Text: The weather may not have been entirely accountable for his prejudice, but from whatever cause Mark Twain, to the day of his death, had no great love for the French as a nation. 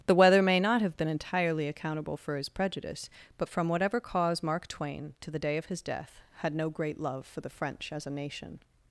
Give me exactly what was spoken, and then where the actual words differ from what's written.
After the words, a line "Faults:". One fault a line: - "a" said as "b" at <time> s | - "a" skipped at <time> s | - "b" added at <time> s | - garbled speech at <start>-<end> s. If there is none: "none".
The weather may not have been entirely accountable for his prejudice, but from whatever cause Mark Twain, to the day of his death, had no great love for the French as a nation.
Faults:
none